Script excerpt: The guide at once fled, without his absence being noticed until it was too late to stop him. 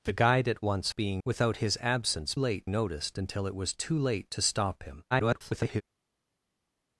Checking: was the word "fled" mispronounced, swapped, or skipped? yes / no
yes